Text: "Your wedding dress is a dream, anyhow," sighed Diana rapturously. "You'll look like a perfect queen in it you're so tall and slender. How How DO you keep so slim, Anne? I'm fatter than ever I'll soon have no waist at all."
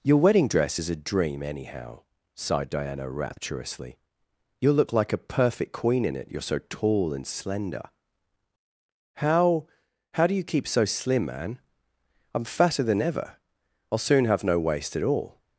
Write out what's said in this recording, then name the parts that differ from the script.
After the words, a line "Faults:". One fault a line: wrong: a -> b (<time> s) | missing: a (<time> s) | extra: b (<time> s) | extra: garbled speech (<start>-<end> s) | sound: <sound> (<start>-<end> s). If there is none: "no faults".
"Your wedding dress is a dream, anyhow," sighed Diana rapturously. "You'll look like a perfect queen in it you're so tall and slender. How How DO you keep so slim, Anne? I'm fatter than ever I'll soon have no waist at all."
Faults:
no faults